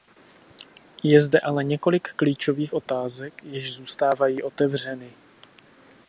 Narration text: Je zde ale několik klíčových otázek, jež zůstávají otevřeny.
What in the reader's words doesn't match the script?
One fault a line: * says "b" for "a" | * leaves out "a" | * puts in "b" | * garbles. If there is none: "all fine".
all fine